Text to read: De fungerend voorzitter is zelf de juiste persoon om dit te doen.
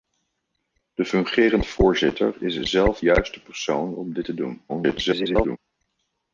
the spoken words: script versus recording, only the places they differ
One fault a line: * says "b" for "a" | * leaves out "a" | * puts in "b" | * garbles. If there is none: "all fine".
* leaves out "de"
* garbles